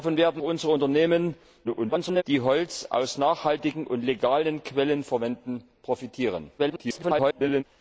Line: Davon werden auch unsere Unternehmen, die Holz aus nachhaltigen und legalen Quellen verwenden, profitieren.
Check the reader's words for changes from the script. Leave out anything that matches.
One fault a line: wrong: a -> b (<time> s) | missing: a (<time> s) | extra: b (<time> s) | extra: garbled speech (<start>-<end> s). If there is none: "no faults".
missing: auch (0.4 s)
extra: garbled speech (1.6-2.2 s)
extra: garbled speech (6.6-7.6 s)